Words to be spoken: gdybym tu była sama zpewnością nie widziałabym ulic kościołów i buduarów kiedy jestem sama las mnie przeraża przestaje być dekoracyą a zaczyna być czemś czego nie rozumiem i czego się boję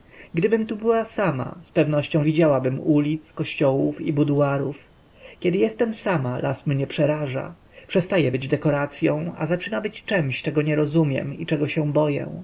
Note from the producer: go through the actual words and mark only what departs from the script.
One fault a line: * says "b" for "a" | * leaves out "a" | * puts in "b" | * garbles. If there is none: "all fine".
* leaves out "nie"